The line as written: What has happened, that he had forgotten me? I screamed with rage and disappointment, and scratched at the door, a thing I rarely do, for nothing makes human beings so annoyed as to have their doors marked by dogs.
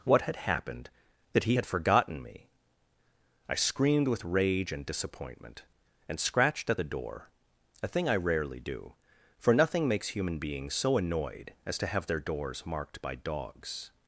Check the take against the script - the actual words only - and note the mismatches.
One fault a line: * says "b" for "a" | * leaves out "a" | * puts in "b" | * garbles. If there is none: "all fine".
* says "had" for "has"